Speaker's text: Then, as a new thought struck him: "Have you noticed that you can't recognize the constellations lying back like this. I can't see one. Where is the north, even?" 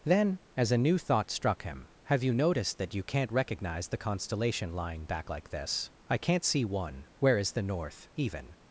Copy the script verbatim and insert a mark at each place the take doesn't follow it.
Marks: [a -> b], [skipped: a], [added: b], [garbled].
Then, as a new thought struck him: "Have you noticed that you can't recognize the [constellations -> constellation] lying back like this. I can't see one. Where is the north, even?"